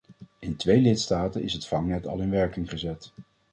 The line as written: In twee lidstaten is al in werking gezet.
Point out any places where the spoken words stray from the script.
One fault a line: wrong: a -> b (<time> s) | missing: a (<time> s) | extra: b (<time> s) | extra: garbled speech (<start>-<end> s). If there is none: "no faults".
extra: het vangnet (1.5 s)